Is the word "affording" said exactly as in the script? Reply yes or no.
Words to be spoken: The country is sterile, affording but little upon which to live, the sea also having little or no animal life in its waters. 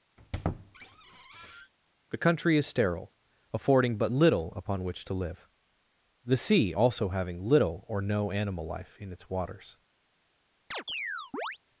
yes